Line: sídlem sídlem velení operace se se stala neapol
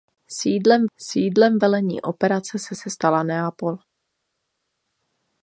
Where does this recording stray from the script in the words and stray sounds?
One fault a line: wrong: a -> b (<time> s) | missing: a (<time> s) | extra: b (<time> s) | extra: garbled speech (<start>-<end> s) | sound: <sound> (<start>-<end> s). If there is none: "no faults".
no faults